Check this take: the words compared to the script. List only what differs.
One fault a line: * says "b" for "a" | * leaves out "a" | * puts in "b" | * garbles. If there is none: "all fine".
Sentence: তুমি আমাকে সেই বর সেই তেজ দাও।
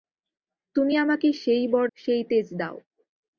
all fine